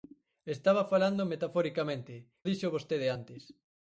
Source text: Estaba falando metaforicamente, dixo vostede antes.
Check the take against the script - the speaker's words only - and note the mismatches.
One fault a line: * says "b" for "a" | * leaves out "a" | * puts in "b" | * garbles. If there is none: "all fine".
all fine